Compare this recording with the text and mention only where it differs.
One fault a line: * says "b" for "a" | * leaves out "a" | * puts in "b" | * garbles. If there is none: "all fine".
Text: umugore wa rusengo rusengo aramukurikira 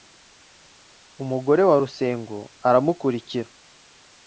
* leaves out "rusengo"